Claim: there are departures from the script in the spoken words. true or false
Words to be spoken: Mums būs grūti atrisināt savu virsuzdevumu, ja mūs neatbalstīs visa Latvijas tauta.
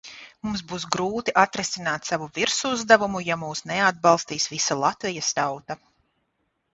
false